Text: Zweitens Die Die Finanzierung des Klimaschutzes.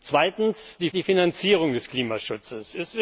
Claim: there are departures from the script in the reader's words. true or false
false